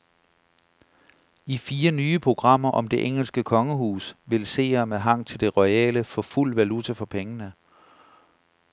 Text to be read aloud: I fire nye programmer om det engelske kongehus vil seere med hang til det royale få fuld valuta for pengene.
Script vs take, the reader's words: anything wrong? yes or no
no